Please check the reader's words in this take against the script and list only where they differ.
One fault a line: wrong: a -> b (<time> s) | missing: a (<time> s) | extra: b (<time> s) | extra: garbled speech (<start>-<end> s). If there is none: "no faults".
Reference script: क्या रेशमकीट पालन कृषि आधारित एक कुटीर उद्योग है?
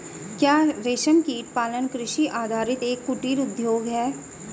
no faults